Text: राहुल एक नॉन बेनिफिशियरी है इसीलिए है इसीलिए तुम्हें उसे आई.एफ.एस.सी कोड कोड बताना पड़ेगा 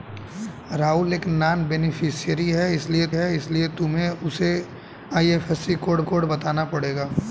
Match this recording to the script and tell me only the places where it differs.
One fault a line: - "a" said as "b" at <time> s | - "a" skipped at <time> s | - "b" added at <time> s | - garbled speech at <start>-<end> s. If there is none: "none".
none